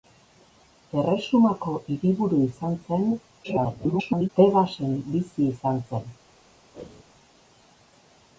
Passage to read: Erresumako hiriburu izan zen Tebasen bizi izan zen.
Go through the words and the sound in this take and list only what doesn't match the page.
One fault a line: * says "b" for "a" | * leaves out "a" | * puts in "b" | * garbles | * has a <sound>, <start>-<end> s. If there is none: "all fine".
* garbles
* has a whoosh, 6.7-7.0 s